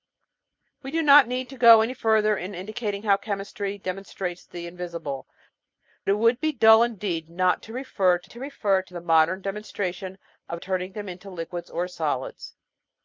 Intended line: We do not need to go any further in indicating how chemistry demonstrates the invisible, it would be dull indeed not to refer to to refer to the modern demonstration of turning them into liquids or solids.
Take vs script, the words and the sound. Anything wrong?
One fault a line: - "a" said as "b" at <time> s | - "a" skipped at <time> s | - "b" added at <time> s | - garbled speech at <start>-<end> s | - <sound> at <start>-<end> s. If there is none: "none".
none